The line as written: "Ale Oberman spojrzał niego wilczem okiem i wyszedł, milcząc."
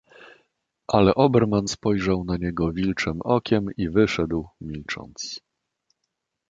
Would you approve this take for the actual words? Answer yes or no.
no